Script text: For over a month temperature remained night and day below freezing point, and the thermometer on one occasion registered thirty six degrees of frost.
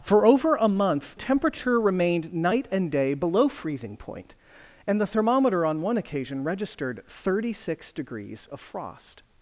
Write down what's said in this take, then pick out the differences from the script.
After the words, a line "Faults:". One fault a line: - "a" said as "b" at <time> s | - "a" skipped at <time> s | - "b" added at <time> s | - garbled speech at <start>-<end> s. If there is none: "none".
For over a month temperature remained night and day below freezing point, and the thermometer on one occasion registered thirty six degrees of frost.
Faults:
none